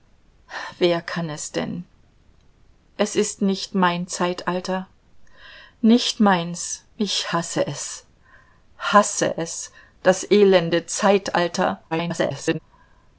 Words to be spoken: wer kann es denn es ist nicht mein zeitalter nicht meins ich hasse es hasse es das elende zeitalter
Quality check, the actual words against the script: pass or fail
fail